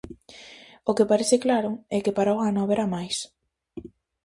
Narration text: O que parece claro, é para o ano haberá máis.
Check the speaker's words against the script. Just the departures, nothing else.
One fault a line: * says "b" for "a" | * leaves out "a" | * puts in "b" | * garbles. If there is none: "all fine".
* puts in "que"